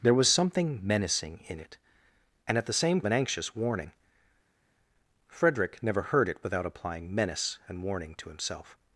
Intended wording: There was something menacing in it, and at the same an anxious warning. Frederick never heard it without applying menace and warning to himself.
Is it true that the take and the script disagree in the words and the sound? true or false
false